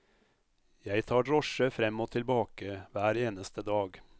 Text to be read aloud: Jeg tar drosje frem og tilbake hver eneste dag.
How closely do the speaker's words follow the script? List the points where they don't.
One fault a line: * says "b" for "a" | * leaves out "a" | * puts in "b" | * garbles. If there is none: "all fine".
all fine